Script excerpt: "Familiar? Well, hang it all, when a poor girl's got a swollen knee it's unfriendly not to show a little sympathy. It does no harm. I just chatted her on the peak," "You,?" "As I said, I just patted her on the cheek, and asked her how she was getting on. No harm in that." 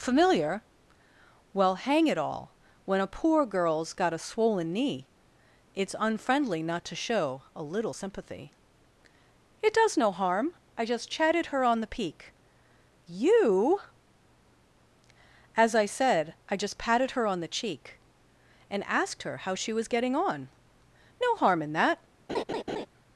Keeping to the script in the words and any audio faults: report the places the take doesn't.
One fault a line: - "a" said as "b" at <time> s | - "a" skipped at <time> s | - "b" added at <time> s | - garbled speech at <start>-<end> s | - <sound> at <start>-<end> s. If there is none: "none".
- laugh at 22.3-22.9 s